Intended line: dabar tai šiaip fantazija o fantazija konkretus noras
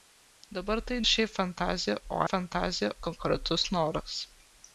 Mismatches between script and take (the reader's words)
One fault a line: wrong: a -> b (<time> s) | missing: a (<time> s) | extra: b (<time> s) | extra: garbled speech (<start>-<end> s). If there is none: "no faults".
no faults